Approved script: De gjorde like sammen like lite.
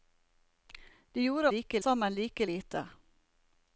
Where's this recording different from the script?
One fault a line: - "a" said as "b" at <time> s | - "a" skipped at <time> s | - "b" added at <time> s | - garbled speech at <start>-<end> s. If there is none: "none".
none